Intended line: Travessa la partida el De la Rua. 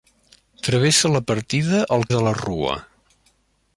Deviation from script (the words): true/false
false